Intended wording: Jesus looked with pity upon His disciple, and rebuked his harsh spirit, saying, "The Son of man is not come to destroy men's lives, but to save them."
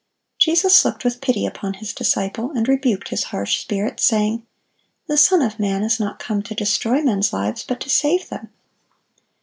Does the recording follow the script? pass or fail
pass